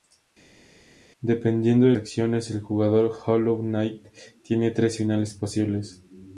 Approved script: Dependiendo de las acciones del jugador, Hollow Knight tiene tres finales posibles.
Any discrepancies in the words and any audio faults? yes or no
yes